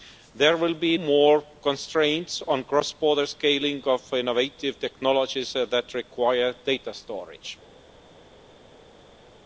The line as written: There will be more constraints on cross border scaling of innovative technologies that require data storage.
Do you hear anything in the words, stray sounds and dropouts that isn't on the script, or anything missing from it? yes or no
no